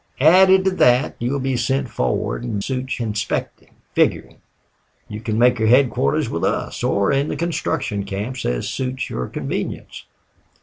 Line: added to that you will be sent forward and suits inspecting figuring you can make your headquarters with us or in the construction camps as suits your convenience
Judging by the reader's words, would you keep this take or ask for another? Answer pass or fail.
pass